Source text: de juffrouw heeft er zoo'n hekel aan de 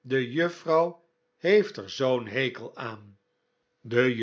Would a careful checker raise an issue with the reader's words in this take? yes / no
no